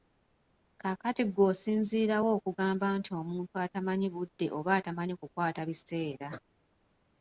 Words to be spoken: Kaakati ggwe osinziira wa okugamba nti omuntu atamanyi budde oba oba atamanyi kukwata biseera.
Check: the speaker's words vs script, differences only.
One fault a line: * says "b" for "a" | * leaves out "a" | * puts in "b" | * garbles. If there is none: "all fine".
* leaves out "oba"